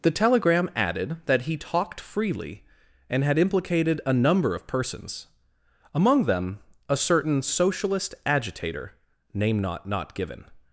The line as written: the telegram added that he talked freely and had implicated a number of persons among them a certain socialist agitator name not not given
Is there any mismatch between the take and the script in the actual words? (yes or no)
no